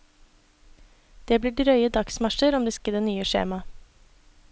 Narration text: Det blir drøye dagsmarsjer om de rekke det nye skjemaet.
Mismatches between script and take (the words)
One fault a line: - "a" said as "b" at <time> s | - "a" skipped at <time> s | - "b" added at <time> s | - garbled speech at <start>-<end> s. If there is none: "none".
none